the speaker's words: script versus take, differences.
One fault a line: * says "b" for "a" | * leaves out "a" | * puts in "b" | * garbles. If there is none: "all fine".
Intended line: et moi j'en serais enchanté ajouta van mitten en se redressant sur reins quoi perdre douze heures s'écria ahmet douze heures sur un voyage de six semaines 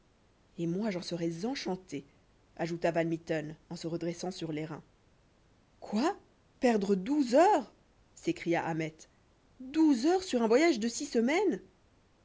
* puts in "les"